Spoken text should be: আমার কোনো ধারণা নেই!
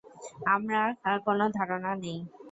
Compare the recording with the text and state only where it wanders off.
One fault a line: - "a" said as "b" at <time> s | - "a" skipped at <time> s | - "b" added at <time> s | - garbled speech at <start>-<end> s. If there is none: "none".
none